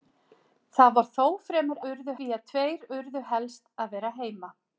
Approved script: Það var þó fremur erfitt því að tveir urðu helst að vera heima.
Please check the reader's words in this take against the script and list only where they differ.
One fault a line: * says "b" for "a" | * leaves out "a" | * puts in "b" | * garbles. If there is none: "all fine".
* says "urðu" for "erfitt"